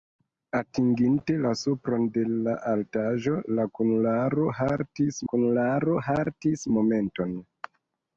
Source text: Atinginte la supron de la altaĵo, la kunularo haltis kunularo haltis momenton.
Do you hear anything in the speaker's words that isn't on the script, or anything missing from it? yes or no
no